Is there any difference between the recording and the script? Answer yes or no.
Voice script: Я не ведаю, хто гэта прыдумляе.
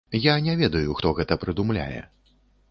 no